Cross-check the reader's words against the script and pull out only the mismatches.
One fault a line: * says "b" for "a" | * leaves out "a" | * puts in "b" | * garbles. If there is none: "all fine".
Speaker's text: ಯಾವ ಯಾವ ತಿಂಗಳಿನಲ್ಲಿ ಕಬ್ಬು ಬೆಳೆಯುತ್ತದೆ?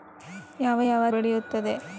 * leaves out "ತಿಂಗಳಿನಲ್ಲಿ ಕಬ್ಬು"